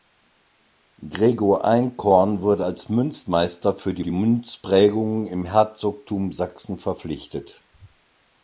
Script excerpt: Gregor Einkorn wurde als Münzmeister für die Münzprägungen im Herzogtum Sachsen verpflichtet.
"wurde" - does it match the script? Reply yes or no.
yes